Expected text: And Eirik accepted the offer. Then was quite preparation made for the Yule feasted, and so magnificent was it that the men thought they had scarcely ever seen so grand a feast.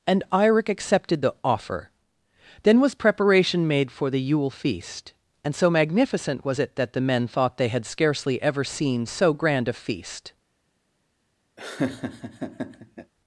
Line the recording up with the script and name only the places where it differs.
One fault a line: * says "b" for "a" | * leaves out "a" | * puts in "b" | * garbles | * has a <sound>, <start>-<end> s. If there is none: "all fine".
* leaves out "quite"
* says "feast" for "feasted"
* has a laugh, 11.6-13.1 s